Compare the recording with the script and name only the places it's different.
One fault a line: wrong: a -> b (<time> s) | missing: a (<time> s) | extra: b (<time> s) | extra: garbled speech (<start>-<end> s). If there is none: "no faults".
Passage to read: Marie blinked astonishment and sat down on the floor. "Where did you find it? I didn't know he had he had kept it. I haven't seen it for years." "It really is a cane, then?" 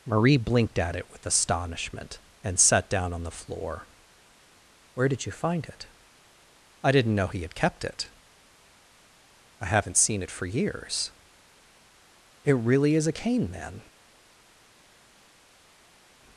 extra: at it with (0.8 s)
missing: he had (7.5 s)